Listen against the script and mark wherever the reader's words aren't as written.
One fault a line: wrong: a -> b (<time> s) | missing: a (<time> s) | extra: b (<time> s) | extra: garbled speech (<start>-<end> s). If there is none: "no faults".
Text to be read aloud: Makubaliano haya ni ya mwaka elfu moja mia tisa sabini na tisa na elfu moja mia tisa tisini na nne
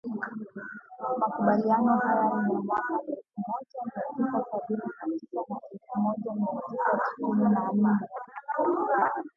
no faults